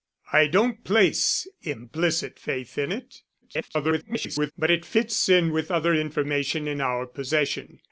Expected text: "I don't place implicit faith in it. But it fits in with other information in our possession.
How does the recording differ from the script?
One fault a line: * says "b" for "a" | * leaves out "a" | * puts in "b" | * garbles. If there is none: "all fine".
* garbles